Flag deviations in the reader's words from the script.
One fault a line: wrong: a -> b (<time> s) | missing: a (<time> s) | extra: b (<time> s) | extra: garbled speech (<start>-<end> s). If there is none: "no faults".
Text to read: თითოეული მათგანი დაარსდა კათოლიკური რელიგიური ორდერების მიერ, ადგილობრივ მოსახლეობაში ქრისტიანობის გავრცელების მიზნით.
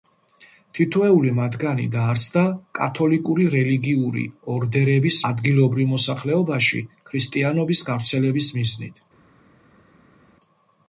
missing: მიერ (5.2 s)